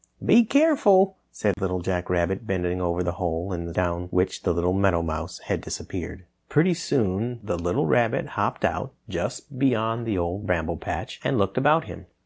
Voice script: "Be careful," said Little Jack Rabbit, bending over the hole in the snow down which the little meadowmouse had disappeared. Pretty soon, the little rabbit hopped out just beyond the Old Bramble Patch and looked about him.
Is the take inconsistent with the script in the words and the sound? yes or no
yes